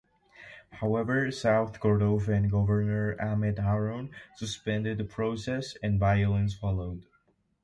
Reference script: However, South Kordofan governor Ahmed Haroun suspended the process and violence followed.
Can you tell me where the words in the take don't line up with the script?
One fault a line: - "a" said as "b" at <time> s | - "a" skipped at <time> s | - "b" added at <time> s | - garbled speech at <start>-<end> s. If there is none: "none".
none